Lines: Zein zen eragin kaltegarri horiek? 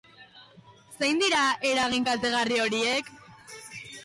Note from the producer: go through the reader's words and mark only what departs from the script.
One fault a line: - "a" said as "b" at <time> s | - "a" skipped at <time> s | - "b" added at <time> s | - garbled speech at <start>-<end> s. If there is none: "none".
- "zen" said as "dira" at 1.2 s